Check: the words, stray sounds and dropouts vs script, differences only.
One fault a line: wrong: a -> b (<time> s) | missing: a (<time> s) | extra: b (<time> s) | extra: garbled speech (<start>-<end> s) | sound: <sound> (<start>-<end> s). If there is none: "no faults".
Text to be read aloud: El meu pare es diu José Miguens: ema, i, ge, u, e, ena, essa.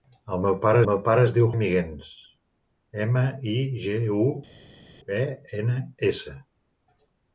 extra: meu pare (0.9 s)
missing: José (1.5 s)